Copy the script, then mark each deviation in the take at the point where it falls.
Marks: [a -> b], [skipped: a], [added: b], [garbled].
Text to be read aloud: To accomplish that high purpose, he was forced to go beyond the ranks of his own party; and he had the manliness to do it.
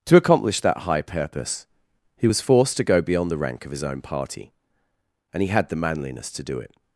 To accomplish that high purpose, he was forced to go beyond the [ranks -> rank] of his own party; and he had the manliness to do it.